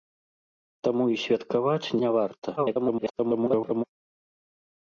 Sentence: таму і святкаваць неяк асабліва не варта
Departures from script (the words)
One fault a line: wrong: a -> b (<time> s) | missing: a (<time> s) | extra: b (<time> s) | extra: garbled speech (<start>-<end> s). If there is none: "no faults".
missing: неяк асабліва (1.9 s)
extra: garbled speech (2.6-3.8 s)